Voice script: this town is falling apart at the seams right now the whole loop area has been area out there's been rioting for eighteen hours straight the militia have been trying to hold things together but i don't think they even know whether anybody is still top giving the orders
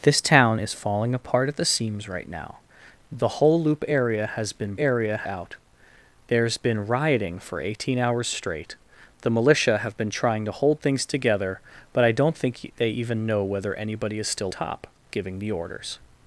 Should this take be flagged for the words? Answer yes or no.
no